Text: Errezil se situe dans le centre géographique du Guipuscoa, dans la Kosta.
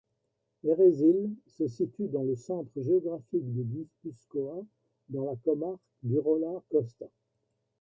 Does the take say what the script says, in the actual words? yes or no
no